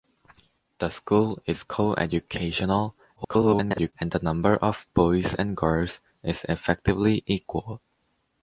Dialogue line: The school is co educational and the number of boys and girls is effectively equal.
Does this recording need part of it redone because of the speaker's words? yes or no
yes